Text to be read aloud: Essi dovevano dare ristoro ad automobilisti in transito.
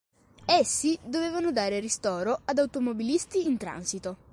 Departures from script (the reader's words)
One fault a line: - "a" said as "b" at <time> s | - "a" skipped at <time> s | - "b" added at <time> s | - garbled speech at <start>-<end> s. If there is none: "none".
none